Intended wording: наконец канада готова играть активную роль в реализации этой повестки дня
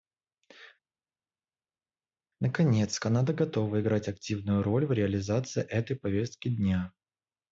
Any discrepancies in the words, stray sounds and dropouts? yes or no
no